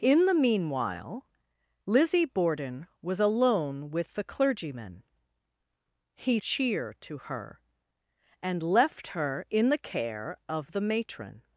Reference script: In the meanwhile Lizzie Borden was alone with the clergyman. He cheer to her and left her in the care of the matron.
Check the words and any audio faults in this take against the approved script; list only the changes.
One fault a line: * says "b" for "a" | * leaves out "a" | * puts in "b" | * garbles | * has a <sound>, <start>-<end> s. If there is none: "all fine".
all fine